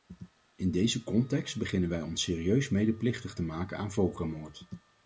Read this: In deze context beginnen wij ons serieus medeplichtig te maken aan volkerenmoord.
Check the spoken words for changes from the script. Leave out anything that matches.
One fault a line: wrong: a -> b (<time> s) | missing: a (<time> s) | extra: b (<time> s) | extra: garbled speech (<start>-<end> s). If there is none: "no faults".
no faults